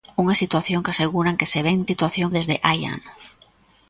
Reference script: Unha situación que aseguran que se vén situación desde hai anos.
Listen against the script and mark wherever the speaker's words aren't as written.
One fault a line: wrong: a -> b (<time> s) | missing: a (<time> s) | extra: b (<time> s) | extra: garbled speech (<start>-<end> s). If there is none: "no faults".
no faults